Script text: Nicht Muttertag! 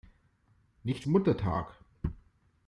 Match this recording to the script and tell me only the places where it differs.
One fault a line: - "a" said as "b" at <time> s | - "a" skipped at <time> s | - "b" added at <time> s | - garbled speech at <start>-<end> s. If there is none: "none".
none